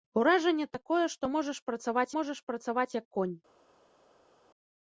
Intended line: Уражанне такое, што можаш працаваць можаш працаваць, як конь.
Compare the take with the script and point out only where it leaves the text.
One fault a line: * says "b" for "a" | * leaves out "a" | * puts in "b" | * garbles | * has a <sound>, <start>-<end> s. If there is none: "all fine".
all fine